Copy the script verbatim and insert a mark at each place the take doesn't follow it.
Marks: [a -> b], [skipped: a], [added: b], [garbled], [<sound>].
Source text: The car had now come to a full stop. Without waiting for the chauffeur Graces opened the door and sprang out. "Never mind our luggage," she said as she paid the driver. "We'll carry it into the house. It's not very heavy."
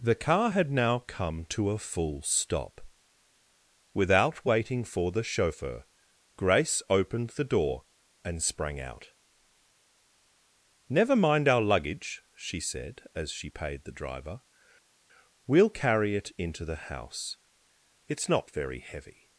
The car had now come to a full stop. Without waiting for the chauffeur [Graces -> Grace] opened the door and sprang out. "Never mind our luggage," she said as she paid the driver. "We'll carry it into the house. It's not very heavy."